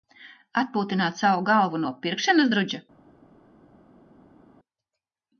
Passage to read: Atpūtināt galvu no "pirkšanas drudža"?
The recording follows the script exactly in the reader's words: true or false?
false